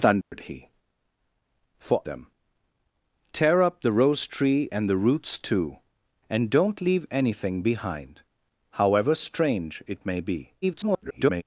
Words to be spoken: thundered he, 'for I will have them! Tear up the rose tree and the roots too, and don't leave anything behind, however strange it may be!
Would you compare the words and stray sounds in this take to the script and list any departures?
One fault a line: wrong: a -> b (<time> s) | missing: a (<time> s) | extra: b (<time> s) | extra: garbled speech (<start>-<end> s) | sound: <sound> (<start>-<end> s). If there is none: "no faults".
sound: dropout (0.2-0.3 s)
missing: I will have (2.0 s)
extra: garbled speech (10.6-11.4 s)